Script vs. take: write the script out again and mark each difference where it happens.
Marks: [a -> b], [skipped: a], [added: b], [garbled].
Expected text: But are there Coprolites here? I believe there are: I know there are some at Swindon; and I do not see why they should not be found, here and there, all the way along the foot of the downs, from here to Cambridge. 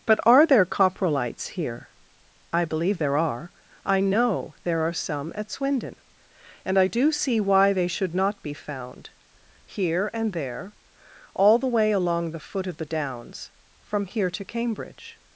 But are there Coprolites here? I believe there are: I know there are some at Swindon; and I do [skipped: not] see why they should not be found, here and there, all the way along the foot of the downs, from here to Cambridge.